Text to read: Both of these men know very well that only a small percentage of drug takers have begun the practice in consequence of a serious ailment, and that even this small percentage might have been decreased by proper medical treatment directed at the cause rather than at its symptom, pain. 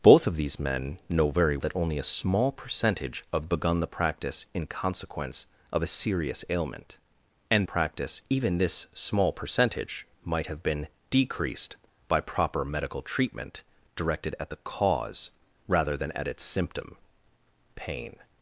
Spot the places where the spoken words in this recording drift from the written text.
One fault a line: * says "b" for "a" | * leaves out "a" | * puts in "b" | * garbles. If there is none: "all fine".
* leaves out "well"
* leaves out "drug takers have"
* says "practice" for "that"